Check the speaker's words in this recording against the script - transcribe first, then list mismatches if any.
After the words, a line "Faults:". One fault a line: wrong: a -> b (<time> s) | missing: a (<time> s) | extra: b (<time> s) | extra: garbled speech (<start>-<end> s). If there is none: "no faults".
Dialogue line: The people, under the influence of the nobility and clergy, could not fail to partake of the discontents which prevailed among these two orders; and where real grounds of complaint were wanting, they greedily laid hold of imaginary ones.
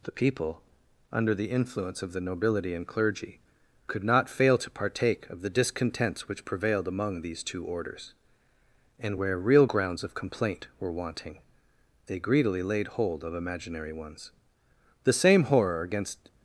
The people, under the influence of the nobility and clergy, could not fail to partake of the discontents which prevailed among these two orders; and where real grounds of complaint were wanting, they greedily laid hold of imaginary ones. The same horror against
Faults:
extra: The same horror against (15.0 s)